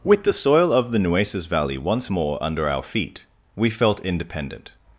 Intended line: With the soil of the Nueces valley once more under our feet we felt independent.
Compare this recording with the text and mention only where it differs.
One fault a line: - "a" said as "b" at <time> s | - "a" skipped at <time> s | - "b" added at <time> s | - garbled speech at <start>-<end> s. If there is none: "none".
none